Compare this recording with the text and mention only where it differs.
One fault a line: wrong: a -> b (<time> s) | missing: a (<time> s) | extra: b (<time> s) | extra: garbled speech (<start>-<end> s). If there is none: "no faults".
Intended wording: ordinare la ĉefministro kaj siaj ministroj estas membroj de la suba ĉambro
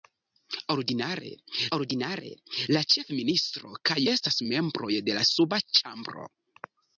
extra: ordinare (1.8 s)
missing: siaj ministroj (4.0 s)